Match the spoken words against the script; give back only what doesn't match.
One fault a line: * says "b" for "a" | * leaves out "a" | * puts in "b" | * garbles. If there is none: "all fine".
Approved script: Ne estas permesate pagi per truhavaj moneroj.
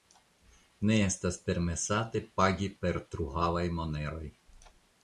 all fine